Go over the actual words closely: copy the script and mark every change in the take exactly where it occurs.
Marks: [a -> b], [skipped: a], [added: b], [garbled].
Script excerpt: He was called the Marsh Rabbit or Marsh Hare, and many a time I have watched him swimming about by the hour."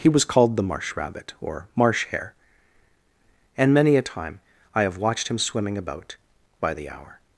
He was called the Marsh Rabbit or Marsh Hare, and many a time I have watched him swimming about by the hour."